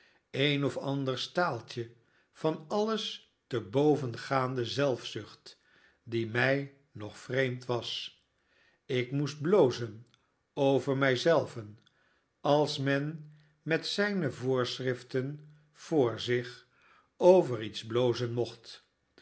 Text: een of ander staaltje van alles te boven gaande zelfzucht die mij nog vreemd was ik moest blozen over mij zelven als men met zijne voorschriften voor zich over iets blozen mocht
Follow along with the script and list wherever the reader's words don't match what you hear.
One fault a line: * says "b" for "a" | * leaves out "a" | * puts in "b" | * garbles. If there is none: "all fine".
all fine